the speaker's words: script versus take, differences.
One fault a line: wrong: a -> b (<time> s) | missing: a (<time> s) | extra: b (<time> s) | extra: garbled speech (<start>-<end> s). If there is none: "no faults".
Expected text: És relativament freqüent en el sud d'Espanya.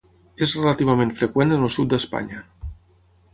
no faults